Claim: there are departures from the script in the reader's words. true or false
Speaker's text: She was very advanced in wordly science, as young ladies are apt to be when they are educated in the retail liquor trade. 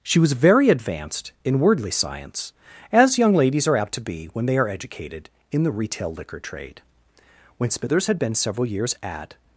true